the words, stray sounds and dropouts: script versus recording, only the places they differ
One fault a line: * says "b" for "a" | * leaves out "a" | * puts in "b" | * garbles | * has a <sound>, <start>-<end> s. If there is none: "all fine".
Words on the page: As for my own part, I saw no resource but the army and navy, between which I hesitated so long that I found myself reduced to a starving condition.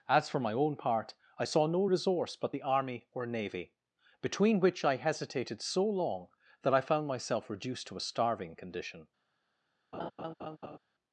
* says "or" for "and"
* has a laugh, 9.9-10.8 s